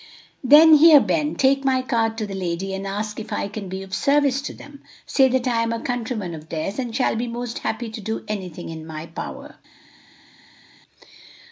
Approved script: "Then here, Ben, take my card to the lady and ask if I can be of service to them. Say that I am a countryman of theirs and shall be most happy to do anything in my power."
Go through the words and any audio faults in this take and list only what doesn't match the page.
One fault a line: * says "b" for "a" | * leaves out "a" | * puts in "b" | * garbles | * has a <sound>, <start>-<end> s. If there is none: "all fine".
all fine